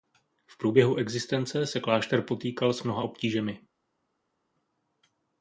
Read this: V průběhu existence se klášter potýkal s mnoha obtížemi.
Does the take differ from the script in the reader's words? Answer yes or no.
no